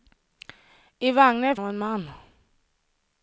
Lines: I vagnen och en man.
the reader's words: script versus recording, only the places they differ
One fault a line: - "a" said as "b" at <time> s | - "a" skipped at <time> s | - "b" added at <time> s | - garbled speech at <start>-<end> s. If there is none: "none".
none